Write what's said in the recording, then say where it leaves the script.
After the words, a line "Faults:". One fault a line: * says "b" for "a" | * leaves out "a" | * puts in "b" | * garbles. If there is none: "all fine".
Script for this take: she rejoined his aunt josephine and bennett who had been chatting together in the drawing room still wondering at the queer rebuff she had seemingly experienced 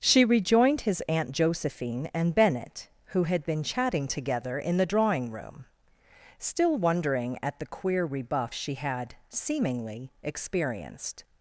she rejoined his aunt josephine and bennett who had been chatting together in the drawing room still wondering at the queer rebuff she had seemingly experienced
Faults:
all fine